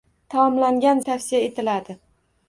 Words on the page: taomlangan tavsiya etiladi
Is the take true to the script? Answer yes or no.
yes